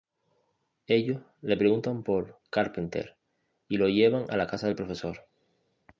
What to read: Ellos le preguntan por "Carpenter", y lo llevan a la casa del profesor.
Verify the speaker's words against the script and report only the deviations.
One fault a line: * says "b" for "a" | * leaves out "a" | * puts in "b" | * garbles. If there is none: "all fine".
all fine